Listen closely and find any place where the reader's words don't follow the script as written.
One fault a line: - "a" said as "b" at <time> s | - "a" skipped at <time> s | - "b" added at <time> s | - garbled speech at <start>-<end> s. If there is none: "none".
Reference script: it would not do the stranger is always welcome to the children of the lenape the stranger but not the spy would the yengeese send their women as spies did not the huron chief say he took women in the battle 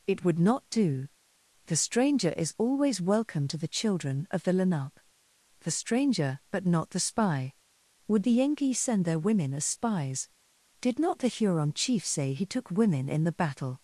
none